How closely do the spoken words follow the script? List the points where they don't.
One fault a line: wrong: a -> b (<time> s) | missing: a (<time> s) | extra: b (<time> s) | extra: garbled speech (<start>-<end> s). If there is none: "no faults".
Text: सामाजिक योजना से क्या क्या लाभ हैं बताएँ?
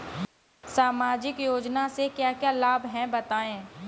no faults